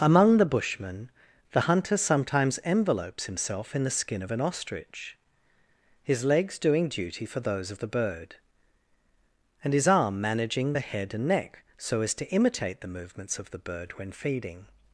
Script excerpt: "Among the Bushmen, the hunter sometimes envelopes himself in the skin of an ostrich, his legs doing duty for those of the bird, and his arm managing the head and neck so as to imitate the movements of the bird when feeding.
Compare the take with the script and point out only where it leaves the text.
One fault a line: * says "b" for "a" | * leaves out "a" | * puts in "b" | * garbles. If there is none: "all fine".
all fine